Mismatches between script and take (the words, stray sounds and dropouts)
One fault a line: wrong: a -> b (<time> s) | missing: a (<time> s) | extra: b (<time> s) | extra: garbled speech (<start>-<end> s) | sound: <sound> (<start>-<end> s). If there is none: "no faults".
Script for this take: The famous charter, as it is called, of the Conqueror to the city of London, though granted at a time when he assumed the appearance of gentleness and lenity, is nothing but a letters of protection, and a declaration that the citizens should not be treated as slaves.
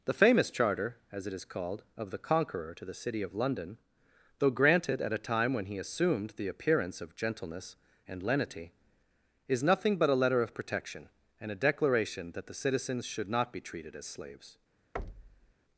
wrong: letters -> letter (10.2 s)
sound: thud (15.0-15.5 s)